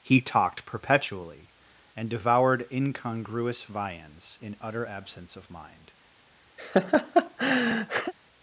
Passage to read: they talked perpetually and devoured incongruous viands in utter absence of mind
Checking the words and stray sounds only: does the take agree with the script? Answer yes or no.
no